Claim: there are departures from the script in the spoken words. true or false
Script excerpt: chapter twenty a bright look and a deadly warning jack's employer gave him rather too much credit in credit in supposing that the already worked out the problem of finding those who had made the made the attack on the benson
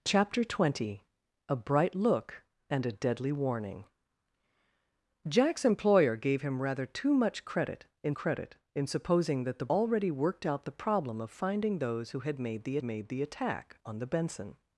false